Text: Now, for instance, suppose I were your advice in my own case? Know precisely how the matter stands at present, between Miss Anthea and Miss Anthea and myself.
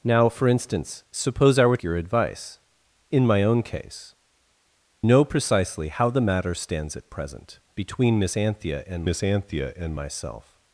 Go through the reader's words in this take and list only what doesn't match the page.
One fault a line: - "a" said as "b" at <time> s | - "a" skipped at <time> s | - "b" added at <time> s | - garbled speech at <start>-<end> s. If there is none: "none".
none